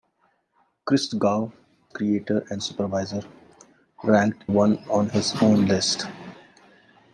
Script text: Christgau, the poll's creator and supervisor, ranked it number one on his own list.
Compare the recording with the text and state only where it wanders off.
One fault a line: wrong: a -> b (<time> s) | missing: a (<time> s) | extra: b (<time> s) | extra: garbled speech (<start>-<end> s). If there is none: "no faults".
missing: the poll's (1.5 s)
missing: it number (4.4 s)